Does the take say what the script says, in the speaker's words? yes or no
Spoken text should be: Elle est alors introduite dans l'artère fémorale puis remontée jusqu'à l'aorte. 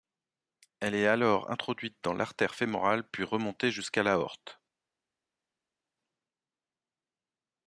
yes